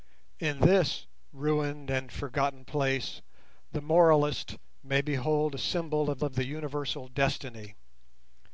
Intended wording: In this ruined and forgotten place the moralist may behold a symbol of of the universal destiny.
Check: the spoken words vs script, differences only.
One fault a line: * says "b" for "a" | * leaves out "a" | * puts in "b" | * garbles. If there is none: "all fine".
all fine